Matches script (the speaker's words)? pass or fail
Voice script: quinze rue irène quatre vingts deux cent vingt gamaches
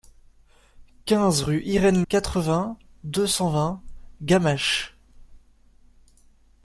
pass